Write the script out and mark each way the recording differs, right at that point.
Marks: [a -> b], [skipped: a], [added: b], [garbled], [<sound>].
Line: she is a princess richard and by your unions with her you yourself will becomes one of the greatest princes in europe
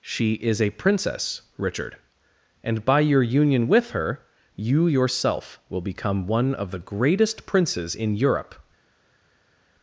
she is a princess richard and by your [unions -> union] with her you yourself will [becomes -> become] one of the greatest princes in europe